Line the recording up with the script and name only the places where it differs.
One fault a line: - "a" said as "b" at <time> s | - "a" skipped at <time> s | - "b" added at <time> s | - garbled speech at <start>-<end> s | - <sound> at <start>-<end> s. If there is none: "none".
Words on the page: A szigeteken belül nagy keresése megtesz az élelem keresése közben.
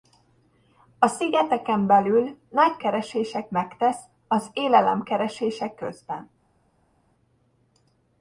none